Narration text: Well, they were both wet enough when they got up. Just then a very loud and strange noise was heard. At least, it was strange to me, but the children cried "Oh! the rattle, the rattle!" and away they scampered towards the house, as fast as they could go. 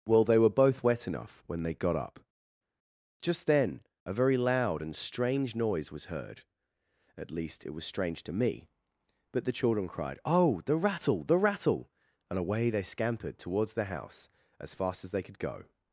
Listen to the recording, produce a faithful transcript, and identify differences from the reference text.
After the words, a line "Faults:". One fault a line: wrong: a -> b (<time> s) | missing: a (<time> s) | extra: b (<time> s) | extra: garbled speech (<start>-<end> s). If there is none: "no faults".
Well, they were both wet enough when they got up. Just then a very loud and strange noise was heard. At least, it was strange to me, but the children cried "Oh! the rattle, the rattle!" and away they scampered towards the house, as fast as they could go.
Faults:
no faults